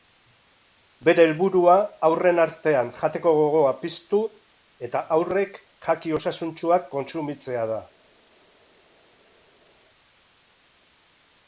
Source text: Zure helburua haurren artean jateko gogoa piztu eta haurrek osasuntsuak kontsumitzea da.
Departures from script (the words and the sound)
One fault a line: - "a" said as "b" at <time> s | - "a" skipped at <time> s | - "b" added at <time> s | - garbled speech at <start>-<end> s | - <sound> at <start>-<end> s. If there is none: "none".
- "Zure" said as "Bere" at 1.1 s
- "jaki" added at 5.9 s